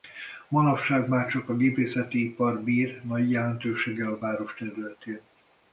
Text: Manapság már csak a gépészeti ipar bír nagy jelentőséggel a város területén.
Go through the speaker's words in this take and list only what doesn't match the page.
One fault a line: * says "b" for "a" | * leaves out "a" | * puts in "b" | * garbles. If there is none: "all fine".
all fine